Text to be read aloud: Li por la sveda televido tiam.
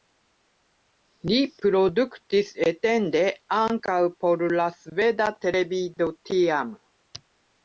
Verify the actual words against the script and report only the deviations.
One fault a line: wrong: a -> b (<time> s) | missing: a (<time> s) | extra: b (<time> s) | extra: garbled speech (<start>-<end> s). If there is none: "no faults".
extra: produktis etende ankaŭ (1.6 s)